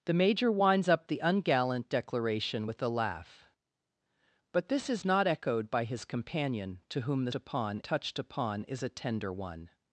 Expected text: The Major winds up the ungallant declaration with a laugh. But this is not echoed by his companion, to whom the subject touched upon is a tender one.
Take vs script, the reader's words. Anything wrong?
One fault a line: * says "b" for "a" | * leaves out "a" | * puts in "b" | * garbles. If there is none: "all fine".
* says "upon" for "subject"